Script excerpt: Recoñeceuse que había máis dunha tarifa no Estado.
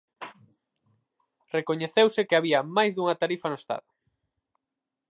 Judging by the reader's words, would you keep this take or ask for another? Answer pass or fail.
pass